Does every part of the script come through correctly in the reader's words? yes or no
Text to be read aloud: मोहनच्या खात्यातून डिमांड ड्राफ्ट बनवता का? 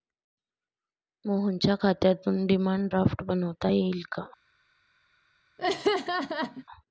no